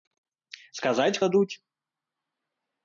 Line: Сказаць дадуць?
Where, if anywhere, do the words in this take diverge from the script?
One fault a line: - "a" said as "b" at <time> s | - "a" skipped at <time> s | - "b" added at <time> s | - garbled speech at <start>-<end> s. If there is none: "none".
none